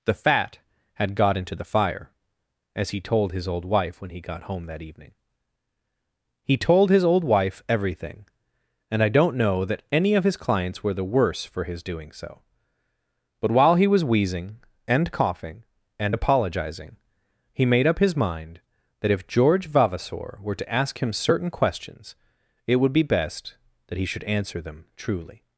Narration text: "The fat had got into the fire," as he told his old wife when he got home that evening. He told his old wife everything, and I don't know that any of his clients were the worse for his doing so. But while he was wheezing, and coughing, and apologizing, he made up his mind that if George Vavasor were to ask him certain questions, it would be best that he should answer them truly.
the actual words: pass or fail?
pass